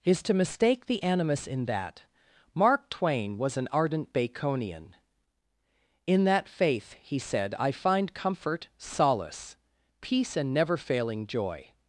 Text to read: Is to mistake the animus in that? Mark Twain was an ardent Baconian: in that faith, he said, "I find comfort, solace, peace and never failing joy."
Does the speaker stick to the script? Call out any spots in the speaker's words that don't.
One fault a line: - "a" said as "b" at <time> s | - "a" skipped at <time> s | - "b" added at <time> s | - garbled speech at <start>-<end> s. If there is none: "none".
none